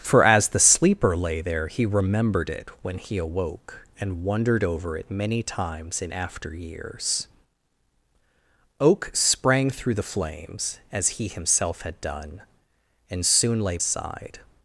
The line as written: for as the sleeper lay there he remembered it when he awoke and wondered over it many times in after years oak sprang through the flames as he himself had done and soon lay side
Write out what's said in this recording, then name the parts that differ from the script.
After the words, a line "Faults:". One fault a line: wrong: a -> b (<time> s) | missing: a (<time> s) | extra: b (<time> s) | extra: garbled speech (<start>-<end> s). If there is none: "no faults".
for as the sleeper lay there he remembered it when he awoke and wondered over it many times in after years oak sprang through the flames as he himself had done and soon lay side
Faults:
no faults